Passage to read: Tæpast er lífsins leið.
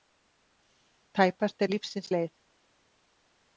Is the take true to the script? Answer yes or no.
yes